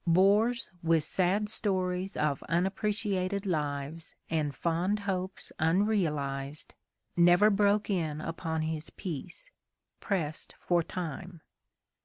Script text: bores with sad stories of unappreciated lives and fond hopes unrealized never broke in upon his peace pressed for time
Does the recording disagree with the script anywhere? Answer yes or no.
no